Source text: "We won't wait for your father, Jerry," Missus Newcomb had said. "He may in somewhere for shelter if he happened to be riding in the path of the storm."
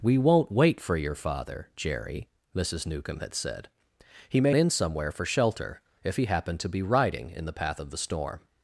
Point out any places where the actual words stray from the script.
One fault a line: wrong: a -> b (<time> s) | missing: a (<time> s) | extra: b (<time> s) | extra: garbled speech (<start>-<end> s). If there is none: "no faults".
no faults